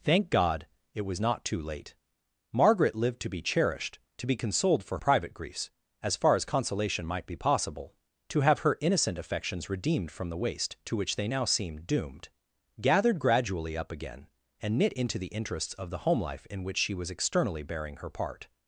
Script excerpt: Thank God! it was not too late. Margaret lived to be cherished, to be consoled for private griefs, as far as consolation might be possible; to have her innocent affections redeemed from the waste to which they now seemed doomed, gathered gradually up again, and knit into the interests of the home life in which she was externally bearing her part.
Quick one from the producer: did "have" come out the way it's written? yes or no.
yes